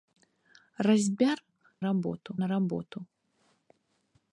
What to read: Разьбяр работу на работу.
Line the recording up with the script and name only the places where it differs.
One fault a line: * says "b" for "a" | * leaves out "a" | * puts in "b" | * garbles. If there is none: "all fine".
all fine